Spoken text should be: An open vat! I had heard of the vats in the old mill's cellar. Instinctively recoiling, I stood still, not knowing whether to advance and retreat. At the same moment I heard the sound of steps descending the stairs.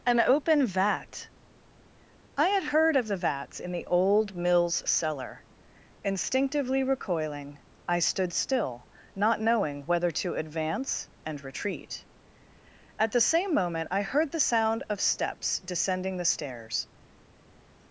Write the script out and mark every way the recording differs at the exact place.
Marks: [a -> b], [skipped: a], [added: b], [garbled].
An open vat! I had heard of the vats in the old mill's cellar. Instinctively recoiling, I stood still, not knowing whether to advance and retreat. At the same moment I heard the sound of steps descending the stairs.